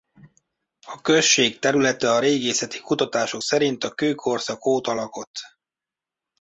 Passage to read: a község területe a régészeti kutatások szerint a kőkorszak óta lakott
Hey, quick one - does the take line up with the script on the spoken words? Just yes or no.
yes